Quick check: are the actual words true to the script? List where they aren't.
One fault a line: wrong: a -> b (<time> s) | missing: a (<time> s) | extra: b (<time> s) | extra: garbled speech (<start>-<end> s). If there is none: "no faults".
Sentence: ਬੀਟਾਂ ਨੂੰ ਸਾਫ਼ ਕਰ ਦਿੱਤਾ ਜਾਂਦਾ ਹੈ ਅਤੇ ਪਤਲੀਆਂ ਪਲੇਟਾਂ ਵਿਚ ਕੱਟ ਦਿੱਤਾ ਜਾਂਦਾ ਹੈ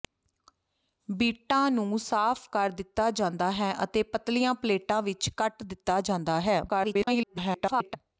extra: garbled speech (6.7-8.0 s)